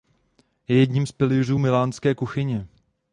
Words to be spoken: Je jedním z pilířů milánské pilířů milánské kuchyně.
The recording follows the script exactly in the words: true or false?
false